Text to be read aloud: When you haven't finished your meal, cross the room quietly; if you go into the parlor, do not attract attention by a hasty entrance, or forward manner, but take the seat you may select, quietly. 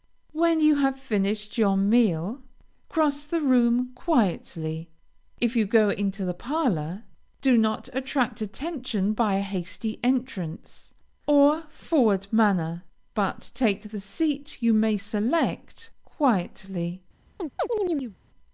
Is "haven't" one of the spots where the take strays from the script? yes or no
yes